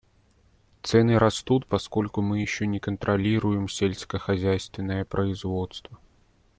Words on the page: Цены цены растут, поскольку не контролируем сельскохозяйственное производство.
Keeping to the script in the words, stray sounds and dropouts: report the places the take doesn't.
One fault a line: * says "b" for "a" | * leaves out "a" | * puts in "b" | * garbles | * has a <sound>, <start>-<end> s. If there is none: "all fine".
* leaves out "цены"
* puts in "мы еще"